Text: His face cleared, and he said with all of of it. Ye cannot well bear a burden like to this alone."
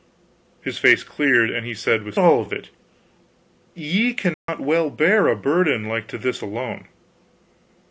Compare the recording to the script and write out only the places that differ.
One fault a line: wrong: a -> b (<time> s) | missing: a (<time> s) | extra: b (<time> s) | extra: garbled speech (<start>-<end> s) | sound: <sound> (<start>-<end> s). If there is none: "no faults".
sound: dropout (4.3-4.5 s)